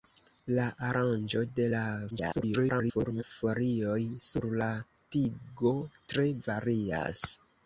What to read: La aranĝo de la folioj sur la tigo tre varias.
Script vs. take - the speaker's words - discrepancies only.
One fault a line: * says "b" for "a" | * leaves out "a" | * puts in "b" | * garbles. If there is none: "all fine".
* garbles